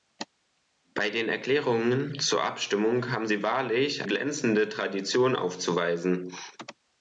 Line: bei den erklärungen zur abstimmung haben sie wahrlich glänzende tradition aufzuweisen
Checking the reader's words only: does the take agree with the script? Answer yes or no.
yes